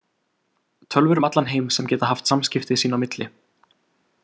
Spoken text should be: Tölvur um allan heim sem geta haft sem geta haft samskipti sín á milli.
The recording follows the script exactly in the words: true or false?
false